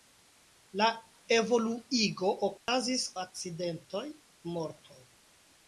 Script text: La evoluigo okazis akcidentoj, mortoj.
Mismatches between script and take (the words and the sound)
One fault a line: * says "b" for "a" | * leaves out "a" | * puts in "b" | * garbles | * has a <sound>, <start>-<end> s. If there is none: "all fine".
* has a dropout, 2.6-2.7 s